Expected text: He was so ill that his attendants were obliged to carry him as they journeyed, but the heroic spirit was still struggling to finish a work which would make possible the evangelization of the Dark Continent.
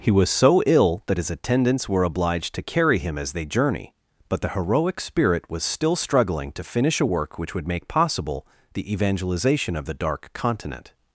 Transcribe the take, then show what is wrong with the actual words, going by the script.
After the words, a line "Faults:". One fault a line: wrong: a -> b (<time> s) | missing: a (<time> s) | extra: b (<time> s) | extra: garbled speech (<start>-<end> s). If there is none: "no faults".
He was so ill that his attendants were obliged to carry him as they journey, but the heroic spirit was still struggling to finish a work which would make possible the evangelization of the Dark Continent.
Faults:
wrong: journeyed -> journey (3.5 s)